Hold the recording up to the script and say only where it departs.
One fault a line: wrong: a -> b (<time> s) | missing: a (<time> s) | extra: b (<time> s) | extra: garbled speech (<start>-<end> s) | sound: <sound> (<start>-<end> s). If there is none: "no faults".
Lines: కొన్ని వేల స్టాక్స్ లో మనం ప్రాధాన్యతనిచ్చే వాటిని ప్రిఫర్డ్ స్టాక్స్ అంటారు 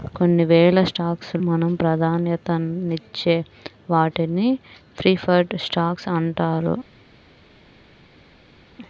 missing: లో (1.3 s)